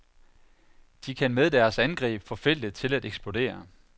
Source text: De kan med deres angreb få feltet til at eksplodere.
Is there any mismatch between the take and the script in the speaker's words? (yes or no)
no